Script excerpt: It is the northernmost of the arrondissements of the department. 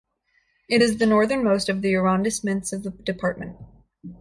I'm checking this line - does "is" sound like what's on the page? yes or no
yes